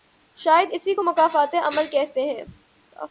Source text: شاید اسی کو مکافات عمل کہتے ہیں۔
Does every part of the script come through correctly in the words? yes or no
yes